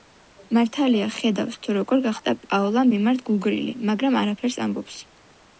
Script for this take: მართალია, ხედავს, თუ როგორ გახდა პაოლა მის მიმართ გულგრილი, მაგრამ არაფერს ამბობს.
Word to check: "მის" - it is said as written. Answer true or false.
false